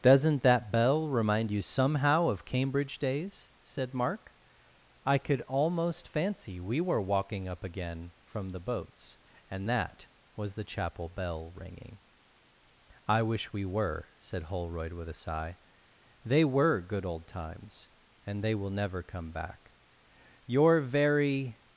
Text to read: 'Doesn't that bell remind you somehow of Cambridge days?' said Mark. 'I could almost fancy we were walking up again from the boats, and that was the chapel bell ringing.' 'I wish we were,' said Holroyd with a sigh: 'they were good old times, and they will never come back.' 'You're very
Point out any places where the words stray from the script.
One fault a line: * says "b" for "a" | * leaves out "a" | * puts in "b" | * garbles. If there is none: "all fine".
all fine